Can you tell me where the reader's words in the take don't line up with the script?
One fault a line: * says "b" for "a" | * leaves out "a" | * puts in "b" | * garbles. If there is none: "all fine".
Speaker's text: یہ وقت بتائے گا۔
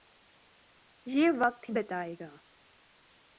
all fine